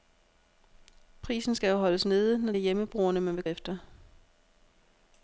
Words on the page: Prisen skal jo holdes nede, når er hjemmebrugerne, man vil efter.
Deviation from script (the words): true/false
false